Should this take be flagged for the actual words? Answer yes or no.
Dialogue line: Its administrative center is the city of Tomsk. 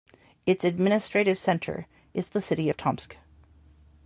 no